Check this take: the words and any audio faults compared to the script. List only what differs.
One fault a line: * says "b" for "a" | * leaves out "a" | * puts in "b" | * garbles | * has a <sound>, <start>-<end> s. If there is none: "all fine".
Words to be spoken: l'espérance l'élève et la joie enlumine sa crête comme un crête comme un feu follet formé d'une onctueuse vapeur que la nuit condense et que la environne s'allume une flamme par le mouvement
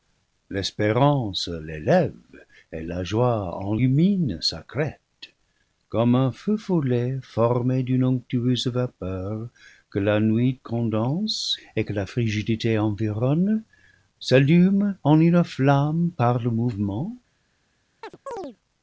* leaves out "crête comme un"
* puts in "frigidité"
* puts in "en"
* has a chirp, 18.0-18.6 s